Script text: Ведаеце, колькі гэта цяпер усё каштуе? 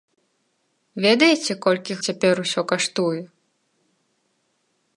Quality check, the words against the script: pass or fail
fail